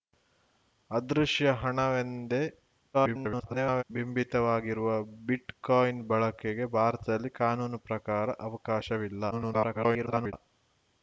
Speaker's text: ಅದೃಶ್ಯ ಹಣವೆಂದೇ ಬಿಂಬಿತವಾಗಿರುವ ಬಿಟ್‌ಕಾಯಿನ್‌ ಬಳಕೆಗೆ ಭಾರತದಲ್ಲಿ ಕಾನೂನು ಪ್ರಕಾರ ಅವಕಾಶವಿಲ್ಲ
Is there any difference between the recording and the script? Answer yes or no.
yes